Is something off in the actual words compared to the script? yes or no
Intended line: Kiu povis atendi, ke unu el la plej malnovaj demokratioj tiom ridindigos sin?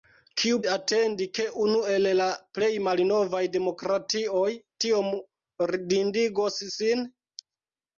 yes